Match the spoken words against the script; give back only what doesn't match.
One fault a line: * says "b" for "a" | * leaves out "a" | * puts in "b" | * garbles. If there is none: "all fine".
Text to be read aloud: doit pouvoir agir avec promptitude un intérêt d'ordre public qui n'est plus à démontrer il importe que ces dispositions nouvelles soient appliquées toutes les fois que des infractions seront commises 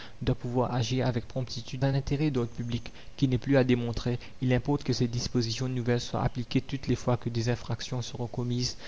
all fine